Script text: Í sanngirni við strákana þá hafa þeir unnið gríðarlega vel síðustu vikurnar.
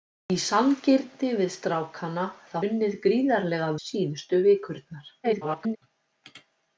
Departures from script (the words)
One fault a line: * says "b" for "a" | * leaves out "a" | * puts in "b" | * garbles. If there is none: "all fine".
* leaves out "hafa þeir"
* leaves out "vel"
* garbles